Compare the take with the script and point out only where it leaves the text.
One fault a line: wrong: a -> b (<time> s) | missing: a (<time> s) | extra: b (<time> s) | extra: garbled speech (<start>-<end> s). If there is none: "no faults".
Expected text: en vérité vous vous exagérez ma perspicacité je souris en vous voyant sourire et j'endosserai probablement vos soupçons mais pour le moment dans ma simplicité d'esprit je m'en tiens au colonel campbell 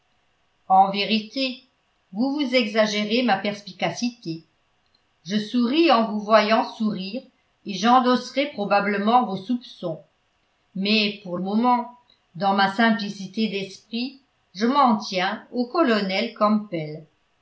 missing: le (11.4 s)